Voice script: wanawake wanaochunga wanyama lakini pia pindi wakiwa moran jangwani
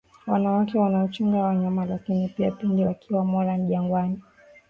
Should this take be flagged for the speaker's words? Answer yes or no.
no